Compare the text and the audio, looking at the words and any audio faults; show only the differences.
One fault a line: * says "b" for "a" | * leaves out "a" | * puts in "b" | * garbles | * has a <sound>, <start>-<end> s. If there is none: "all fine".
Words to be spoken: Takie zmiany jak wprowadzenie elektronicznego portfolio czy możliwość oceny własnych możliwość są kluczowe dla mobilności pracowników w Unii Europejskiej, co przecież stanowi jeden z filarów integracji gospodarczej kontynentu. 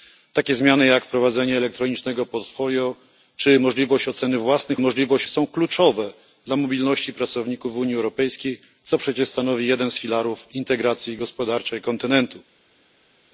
all fine